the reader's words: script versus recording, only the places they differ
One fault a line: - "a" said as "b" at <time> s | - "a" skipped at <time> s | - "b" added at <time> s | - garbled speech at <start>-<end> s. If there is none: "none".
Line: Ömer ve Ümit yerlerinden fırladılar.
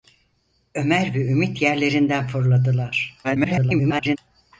- garbled speech at 3.2-4.2 s